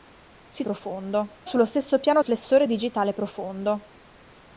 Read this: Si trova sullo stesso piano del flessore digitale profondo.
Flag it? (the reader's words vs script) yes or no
yes